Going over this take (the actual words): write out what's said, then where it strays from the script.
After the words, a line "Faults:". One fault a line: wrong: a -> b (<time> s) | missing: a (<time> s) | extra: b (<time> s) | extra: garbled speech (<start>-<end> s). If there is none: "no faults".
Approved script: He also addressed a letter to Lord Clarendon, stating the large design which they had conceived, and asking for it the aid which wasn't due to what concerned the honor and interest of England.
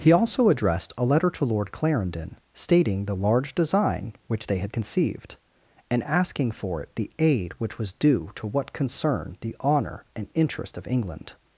He also addressed a letter to Lord Clarendon, stating the large design which they had conceived, and asking for it the aid which was due to what concerned the honor and interest of England.
Faults:
wrong: wasn't -> was (7.8 s)